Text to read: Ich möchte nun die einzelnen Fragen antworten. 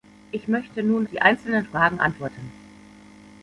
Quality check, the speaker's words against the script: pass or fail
pass